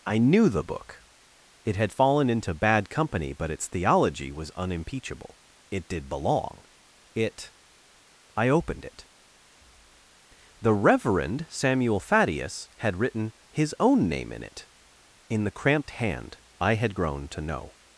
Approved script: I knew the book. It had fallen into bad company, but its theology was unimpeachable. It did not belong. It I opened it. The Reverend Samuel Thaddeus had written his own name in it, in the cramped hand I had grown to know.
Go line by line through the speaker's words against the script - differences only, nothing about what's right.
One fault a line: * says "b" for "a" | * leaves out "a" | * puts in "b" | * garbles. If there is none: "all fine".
* leaves out "not"